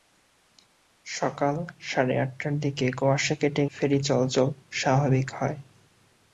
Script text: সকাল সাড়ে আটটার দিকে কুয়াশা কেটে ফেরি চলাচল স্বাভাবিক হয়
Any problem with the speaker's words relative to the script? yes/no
no